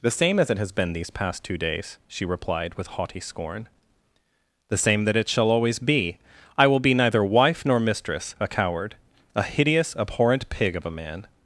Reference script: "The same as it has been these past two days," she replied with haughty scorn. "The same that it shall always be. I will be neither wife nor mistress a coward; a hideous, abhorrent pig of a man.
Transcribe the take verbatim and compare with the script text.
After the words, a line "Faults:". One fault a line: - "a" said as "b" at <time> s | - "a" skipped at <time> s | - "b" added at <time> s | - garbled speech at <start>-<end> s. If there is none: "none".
"The same as it has been these past two days," she replied with haughty scorn. "The same that it shall always be. I will be neither wife nor mistress a coward; a hideous, abhorrent pig of a man.
Faults:
none